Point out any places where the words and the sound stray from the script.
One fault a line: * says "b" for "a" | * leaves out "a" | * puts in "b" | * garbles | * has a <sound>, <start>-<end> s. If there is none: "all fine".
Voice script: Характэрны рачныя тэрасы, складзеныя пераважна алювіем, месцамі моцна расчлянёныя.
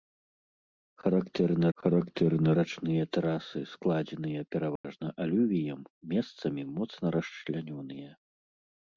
* puts in "характэрны"
* has a dropout, 4.8-4.8 s